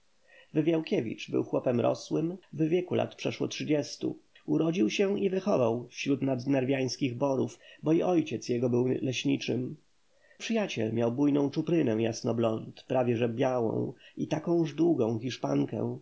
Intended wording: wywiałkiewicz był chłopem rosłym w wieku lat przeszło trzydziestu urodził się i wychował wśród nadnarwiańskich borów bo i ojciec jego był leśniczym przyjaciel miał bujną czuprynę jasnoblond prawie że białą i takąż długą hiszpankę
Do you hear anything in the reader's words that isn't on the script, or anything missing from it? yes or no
no